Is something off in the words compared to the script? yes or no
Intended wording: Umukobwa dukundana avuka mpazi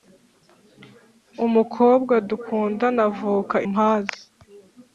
no